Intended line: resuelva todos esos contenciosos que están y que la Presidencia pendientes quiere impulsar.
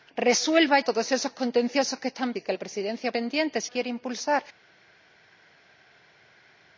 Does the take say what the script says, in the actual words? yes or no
yes